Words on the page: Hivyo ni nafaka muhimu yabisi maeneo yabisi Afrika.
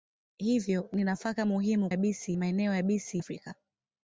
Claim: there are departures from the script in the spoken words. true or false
false